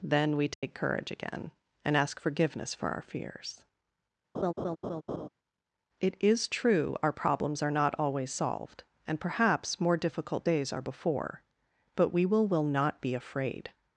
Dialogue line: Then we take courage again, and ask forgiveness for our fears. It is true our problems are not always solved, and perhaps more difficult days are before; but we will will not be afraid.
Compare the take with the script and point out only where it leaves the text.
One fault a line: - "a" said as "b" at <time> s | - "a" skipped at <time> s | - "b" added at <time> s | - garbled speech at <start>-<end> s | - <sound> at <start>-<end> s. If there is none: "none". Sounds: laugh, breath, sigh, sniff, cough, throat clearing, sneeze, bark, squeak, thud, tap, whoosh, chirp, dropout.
- dropout at 0.5-0.6 s
- laugh at 4.3-5.3 s